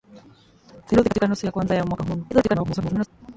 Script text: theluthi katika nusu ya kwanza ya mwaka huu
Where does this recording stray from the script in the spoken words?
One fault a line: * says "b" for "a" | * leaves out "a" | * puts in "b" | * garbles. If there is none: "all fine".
* garbles